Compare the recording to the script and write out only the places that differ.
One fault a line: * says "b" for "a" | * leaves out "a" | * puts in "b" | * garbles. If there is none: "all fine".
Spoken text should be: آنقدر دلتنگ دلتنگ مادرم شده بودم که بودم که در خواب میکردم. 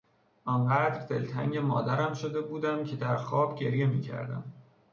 * leaves out "دلتنگ"
* leaves out "بودم که"
* puts in "گریه"